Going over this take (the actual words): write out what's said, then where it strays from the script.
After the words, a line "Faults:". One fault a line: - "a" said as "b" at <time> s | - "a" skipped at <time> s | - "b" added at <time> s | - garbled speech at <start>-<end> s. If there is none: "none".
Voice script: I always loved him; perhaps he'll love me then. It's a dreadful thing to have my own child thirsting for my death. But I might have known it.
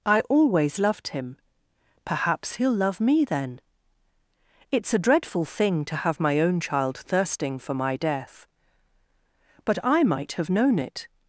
I always loved him; perhaps he'll love me then. It's a dreadful thing to have my own child thirsting for my death. But I might have known it.
Faults:
none